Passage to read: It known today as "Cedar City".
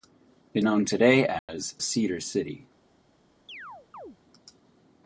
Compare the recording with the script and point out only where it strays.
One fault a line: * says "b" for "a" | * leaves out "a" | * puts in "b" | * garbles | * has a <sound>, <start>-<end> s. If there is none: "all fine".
* has a dropout, 1.4-1.5 s
* has a chirp, 3.5-4.2 s